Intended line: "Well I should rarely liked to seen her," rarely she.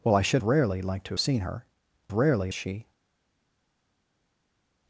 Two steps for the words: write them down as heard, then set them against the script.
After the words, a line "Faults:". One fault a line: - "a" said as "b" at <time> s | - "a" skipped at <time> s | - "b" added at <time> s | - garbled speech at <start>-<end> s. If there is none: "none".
"Well I should rarely liked to seen her," rarely she.
Faults:
none